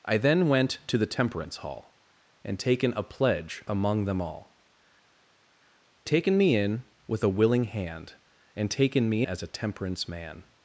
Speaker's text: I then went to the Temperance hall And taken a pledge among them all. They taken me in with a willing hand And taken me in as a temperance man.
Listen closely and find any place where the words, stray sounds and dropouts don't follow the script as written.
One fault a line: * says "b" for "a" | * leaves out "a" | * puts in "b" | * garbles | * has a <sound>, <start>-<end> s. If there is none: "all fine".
* leaves out "They"
* leaves out "in"